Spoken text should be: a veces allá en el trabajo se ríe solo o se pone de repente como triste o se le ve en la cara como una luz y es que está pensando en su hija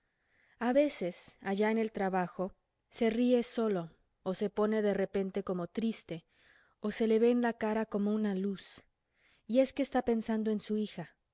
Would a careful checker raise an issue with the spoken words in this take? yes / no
no